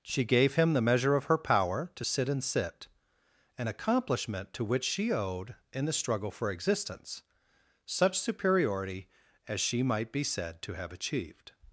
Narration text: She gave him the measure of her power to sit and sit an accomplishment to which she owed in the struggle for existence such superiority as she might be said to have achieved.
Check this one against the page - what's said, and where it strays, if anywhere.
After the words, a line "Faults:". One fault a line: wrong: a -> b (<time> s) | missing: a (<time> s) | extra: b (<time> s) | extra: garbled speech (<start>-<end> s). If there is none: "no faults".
She gave him the measure of her power to sit and sit an accomplishment to which she owed in the struggle for existence such superiority as she might be said to have achieved.
Faults:
no faults